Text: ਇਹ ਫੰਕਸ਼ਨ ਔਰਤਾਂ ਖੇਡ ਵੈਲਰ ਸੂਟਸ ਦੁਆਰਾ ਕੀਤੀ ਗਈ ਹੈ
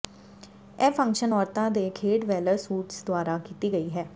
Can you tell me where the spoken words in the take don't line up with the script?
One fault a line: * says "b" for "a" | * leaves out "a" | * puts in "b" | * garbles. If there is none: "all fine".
* puts in "ਦੇ"